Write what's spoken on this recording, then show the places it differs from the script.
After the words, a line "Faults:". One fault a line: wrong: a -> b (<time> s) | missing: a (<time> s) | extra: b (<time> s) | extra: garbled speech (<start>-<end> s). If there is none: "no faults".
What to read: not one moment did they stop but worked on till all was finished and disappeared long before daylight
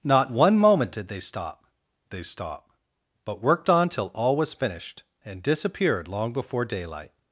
not one moment did they stop they stop but worked on till all was finished and disappeared long before daylight
Faults:
extra: they stop (2.1 s)